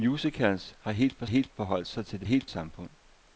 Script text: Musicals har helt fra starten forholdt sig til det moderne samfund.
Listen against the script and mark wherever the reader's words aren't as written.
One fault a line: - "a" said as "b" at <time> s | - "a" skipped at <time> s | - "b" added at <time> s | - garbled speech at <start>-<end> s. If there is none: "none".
- "starten" said as "helt" at 1.2 s
- "moderne" said as "helt" at 2.2 s